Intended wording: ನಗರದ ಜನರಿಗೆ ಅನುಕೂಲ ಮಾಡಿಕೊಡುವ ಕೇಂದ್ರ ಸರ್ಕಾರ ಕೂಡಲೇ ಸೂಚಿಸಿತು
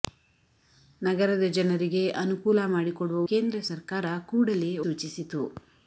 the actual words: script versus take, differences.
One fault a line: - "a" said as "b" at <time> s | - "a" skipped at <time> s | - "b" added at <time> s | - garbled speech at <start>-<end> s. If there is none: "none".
none